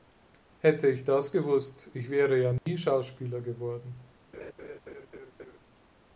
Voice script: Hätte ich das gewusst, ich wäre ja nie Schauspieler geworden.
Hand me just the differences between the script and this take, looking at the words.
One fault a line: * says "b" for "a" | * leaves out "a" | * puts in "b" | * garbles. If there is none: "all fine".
all fine